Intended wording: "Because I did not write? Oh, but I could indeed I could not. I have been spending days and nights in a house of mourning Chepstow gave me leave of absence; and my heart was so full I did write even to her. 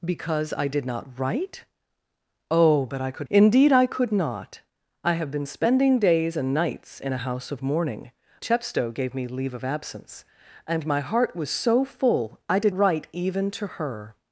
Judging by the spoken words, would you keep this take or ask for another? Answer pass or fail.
pass